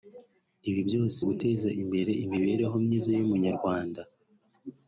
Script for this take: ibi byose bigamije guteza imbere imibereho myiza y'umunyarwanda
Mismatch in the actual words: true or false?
true